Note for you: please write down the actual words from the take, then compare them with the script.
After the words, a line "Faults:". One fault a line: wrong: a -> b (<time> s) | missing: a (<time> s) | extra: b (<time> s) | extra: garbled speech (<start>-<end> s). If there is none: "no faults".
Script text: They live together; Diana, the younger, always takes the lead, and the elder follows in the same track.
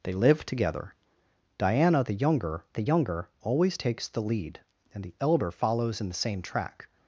They live together; Diana, the younger the younger, always takes the lead, and the elder follows in the same track.
Faults:
extra: the younger (2.7 s)